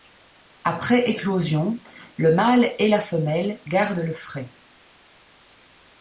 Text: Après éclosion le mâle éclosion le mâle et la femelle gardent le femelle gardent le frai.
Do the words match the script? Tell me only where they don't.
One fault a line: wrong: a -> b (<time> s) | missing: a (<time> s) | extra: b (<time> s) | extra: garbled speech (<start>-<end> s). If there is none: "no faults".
missing: éclosion le mâle (2.7 s)
missing: femelle gardent le (4.1 s)